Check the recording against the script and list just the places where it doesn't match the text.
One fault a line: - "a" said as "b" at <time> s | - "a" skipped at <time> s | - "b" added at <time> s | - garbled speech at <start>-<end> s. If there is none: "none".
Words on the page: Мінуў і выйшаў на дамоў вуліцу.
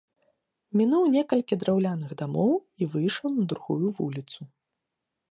- "некалькі драўляных дамоў" added at 1.1 s
- "дамоў" said as "другую" at 3.5 s